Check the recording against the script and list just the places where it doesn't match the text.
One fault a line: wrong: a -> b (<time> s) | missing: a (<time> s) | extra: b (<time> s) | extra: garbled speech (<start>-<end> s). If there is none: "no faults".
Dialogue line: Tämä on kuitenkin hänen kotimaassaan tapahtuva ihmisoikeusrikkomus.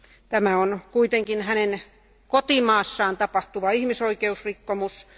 no faults